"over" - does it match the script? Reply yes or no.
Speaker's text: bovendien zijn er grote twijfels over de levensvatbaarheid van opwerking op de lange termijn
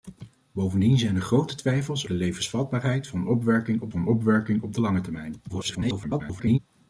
no